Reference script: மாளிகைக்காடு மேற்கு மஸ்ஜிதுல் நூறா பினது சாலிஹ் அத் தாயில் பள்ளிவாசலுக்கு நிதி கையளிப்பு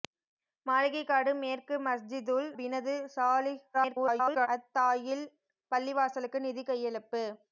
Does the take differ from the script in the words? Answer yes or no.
yes